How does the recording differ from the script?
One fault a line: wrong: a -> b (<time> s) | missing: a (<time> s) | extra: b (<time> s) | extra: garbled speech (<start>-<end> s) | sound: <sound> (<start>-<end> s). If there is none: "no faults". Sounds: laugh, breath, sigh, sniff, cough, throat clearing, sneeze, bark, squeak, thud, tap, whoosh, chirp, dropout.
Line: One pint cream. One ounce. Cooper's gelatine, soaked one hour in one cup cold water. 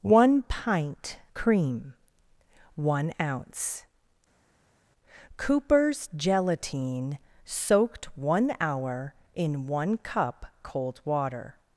no faults